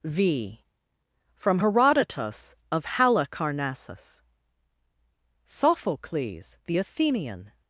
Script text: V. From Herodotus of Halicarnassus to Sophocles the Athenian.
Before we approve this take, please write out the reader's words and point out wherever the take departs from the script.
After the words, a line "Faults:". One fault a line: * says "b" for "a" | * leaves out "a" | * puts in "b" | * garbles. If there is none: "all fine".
V. From Herodotus of Halicarnassus Sophocles the Athenian.
Faults:
* leaves out "to"